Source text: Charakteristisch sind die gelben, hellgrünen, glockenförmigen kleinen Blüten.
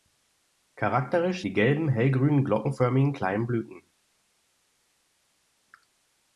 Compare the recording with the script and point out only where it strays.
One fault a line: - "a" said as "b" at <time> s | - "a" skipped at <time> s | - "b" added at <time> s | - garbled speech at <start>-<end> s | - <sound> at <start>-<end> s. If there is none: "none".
- "sind" skipped at 1.4 s